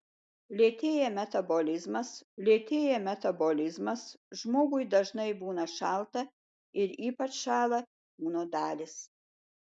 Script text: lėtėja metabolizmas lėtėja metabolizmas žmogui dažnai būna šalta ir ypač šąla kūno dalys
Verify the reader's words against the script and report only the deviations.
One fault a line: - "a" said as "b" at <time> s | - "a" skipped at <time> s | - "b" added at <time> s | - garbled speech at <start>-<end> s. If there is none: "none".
none